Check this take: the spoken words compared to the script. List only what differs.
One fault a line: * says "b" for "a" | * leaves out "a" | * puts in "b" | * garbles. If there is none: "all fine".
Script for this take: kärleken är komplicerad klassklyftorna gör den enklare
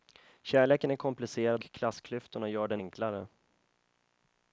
all fine